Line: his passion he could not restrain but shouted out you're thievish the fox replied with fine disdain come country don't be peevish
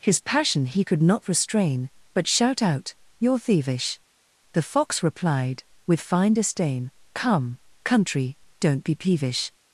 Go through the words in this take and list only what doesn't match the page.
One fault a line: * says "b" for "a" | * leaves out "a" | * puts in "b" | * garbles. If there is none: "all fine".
* says "shout" for "shouted"